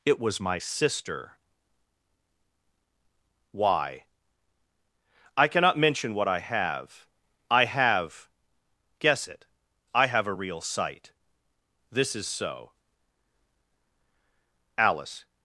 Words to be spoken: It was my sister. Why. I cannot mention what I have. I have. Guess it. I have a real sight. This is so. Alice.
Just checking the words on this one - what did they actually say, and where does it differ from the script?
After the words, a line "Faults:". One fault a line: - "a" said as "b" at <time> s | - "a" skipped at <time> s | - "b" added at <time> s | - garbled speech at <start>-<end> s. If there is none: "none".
It was my sister. Why. I cannot mention what I have. I have. Guess it. I have a real sight. This is so. Alice.
Faults:
none